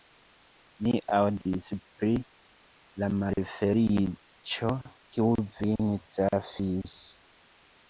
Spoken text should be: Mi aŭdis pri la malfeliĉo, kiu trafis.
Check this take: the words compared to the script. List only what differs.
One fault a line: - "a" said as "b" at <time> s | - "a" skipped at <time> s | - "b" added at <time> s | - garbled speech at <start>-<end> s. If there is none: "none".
- "vin" added at 5.6 s